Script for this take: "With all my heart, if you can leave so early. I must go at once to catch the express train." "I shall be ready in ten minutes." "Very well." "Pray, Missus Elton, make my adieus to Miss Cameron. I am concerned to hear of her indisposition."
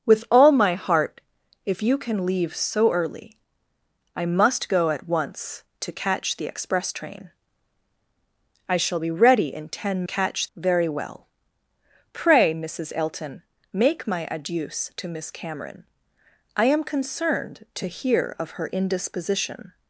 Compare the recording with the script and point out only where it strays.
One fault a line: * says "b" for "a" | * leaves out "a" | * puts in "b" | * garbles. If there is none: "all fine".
* says "catch" for "minutes"